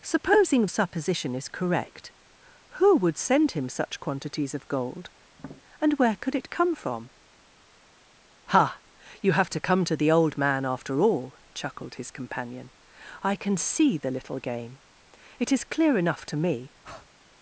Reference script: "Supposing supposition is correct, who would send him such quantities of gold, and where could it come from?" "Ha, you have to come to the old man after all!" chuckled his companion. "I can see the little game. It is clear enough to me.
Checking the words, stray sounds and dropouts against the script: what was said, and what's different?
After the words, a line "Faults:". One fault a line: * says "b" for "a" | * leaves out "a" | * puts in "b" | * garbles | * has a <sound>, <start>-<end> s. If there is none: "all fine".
"Supposing supposition is correct, who would send him such quantities of gold, and where could it come from?" "Ha, you have to come to the old man after all!" chuckled his companion. "I can see the little game. It is clear enough to me.
Faults:
* has a tap, 5.3-5.6 s
* has a breath, 16.8-17.1 s